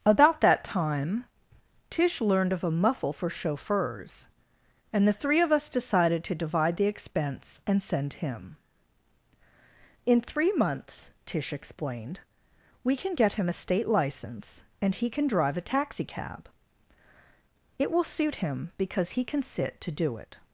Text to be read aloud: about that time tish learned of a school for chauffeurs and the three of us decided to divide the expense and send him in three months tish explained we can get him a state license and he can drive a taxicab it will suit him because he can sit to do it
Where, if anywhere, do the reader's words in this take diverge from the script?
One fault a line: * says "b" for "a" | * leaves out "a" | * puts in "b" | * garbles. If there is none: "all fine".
* says "muffle" for "school"